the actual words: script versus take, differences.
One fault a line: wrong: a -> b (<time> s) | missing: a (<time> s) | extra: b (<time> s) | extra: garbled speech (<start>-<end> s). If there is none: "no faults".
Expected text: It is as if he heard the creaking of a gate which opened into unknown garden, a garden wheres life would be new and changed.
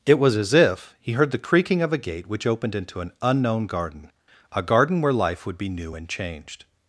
wrong: is -> was (0.2 s)
extra: an (3.0 s)
wrong: wheres -> where (5.0 s)